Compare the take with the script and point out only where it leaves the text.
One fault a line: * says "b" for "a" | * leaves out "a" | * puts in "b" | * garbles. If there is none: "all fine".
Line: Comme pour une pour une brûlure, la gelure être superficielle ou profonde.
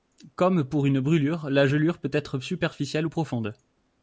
* leaves out "pour une"
* puts in "peut"